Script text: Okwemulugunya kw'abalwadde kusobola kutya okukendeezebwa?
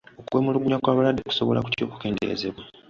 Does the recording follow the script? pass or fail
pass